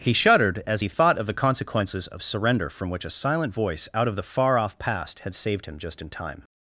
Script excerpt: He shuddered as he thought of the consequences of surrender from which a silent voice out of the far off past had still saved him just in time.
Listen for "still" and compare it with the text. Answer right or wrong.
wrong